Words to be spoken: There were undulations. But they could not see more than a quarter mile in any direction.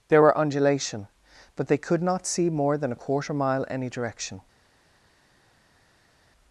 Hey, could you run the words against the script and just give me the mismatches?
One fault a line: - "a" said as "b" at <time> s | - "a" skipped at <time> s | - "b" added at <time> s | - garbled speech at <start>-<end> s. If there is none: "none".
- "undulations" said as "undulation" at 0.4 s
- "in" skipped at 3.7 s